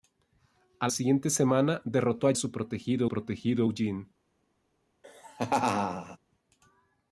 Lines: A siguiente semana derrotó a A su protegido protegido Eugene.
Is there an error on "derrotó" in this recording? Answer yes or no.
no